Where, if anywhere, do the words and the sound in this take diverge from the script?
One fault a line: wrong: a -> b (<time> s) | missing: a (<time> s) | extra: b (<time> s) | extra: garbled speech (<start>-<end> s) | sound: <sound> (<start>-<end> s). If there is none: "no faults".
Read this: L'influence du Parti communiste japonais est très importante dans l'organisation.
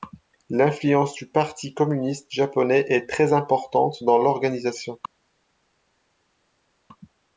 no faults